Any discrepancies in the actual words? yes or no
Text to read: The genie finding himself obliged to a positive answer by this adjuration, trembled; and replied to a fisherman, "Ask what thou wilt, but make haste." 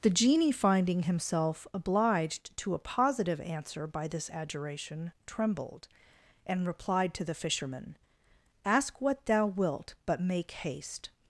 yes